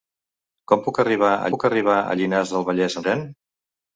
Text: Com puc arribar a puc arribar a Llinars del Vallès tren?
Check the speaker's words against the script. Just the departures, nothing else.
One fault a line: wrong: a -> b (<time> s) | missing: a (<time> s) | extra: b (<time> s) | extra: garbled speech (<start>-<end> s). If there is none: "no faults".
no faults